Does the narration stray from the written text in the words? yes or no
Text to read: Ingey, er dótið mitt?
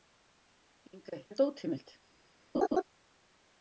no